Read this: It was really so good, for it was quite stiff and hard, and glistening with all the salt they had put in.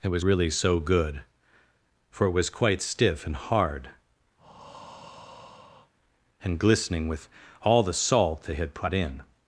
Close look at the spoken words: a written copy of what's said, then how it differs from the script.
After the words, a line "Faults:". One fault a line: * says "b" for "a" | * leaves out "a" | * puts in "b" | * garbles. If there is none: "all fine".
It was really so good, for it was quite stiff and hard, and glistening with all the salt they had put in.
Faults:
all fine